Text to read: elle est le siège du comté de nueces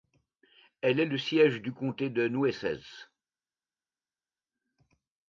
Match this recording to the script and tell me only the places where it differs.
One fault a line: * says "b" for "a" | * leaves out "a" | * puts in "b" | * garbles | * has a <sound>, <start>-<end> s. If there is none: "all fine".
all fine